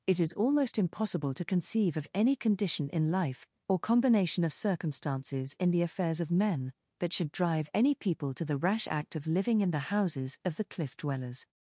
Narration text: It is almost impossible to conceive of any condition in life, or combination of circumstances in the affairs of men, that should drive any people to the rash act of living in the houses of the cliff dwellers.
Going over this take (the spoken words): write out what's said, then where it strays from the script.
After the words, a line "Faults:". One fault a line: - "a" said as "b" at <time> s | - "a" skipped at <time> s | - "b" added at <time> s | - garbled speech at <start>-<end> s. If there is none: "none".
It is almost impossible to conceive of any condition in life, or combination of circumstances in the affairs of men, that should drive any people to the rash act of living in the houses of the cliff dwellers.
Faults:
none